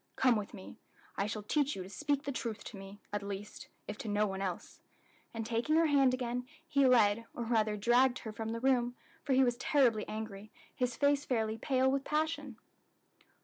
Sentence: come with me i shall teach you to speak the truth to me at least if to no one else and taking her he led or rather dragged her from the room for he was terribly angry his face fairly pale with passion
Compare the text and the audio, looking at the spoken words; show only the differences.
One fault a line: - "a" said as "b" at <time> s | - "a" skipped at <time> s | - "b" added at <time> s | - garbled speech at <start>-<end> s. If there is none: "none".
- "hand again" added at 5.8 s